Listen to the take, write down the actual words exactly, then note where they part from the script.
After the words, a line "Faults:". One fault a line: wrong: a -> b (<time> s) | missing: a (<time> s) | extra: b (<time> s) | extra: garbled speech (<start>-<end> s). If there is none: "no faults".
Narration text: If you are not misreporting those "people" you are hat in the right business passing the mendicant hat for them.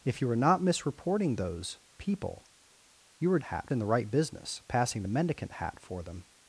If you are not misreporting those "people" you are hat in the right business passing the mendicant hat for them.
Faults:
no faults